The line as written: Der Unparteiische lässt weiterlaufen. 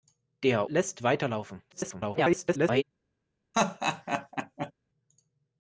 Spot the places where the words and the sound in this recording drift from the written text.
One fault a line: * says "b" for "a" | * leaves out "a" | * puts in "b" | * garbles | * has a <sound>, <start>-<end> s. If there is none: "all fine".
* leaves out "Unparteiische"
* garbles
* has a laugh, 3.5-4.7 s